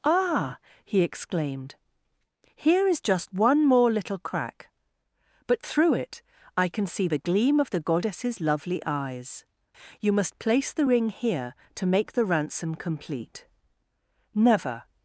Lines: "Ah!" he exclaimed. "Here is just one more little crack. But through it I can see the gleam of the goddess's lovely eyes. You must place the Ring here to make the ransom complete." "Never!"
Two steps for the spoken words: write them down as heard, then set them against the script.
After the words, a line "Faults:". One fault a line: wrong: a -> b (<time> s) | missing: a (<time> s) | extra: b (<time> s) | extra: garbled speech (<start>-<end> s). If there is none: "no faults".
"Ah!" he exclaimed. "Here is just one more little crack. But through it I can see the gleam of the goddess's lovely eyes. You must place the Ring here to make the ransom complete." "Never!"
Faults:
no faults